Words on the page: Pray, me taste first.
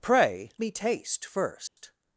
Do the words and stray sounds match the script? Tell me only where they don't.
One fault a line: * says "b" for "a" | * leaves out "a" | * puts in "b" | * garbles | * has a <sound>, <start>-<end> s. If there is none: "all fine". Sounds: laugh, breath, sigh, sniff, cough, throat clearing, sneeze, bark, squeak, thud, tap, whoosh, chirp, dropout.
* has a dropout, 1.7-1.8 s